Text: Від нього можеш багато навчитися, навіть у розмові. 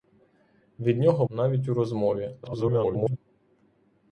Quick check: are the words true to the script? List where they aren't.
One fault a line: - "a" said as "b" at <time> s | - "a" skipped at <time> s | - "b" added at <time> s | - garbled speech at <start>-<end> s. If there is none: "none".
- "можеш багато навчитися" skipped at 1.2 s
- garbled speech at 2.4-3.2 s